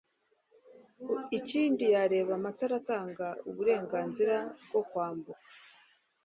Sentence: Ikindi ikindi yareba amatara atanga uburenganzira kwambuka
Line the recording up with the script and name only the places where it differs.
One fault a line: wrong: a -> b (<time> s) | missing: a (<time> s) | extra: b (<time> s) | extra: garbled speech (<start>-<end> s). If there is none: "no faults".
missing: ikindi (1.8 s)
extra: bwo (4.7 s)